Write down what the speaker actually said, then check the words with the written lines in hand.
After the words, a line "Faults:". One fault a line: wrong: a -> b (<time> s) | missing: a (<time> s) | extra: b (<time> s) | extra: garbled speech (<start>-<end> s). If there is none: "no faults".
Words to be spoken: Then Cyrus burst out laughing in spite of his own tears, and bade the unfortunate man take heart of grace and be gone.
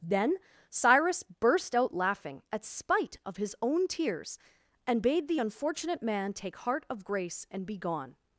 Then Cyrus burst out laughing at spite of his own tears, and bade the unfortunate man take heart of grace and be gone.
Faults:
wrong: in -> at (2.5 s)